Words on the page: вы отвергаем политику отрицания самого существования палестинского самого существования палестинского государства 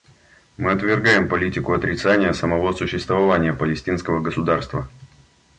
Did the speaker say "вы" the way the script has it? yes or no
no